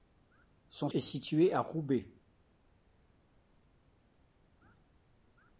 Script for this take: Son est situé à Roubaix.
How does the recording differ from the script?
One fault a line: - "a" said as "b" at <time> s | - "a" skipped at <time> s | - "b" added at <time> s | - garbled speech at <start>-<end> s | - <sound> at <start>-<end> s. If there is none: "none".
none